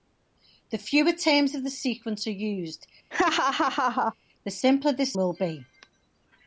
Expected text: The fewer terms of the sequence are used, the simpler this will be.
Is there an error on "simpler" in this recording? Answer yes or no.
no